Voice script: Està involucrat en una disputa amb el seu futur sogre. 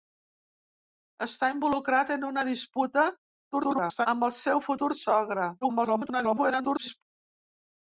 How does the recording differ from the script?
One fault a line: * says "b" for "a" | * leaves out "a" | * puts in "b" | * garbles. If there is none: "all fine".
* garbles
* garbles